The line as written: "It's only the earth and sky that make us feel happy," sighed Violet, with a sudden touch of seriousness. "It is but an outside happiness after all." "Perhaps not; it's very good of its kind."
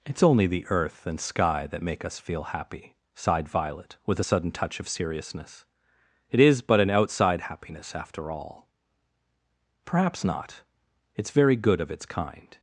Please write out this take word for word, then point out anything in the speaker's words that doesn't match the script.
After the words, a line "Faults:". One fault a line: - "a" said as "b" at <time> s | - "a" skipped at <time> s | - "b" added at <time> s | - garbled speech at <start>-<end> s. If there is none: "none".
"It's only the earth and sky that make us feel happy," sighed Violet, with a sudden touch of seriousness. "It is but an outside happiness after all." "Perhaps not; it's very good of its kind."
Faults:
none